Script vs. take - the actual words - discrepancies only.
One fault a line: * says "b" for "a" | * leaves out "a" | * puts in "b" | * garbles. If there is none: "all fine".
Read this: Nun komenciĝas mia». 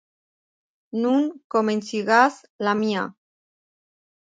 * puts in "la"